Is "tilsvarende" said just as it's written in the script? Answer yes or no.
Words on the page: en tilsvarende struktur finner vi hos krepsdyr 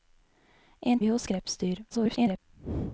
no